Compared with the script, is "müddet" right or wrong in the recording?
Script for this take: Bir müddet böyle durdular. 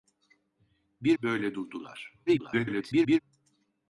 wrong